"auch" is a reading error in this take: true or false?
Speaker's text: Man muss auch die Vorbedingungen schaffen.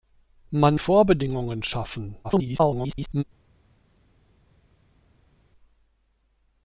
true